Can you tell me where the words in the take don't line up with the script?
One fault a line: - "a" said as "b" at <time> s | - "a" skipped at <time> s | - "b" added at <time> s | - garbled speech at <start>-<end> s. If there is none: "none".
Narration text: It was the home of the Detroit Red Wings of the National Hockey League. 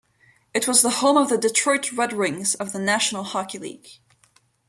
none